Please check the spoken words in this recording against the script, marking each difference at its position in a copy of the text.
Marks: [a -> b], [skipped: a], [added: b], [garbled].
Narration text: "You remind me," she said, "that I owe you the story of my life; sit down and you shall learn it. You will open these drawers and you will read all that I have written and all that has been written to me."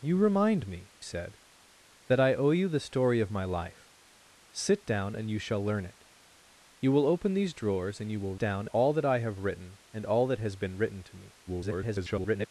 "You remind me," [skipped: she] said, "that I owe you the story of my life; sit down and you shall learn it. You will open these drawers and you will [read -> down] all that I have written and all that has been written to me." [garbled]